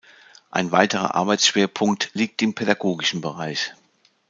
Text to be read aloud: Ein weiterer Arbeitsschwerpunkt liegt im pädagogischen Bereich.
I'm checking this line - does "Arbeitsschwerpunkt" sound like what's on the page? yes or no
yes